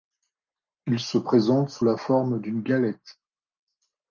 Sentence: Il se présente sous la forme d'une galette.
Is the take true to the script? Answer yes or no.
yes